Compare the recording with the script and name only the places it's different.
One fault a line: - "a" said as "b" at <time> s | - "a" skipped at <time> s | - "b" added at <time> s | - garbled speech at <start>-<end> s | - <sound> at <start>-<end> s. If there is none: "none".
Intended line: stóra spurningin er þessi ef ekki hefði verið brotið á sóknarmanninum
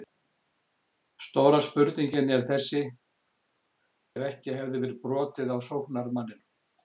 none